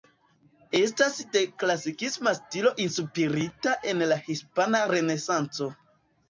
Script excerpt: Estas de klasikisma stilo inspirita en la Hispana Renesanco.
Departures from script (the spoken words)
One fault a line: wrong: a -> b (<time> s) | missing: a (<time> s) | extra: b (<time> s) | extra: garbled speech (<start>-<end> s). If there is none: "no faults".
no faults